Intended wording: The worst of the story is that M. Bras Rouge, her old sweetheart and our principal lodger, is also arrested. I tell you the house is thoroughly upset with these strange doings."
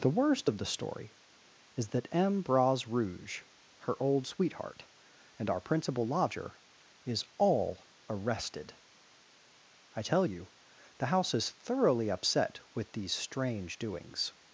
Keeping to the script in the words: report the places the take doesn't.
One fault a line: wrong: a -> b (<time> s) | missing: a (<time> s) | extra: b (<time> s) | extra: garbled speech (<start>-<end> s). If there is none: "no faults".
wrong: also -> all (7.4 s)